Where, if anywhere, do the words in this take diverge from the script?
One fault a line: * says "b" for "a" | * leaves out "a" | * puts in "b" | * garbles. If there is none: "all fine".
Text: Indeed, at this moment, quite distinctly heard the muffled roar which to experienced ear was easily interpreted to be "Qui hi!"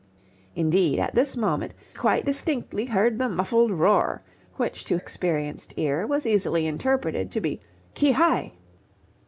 all fine